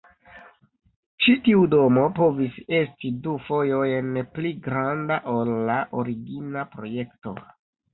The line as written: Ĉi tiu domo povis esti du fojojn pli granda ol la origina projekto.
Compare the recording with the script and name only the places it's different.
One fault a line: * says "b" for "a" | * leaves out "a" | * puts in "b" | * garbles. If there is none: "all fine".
all fine